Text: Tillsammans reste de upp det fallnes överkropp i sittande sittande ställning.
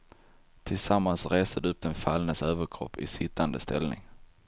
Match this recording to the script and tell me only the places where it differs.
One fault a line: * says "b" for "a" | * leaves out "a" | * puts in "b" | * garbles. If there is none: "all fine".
* says "den" for "det"
* leaves out "sittande"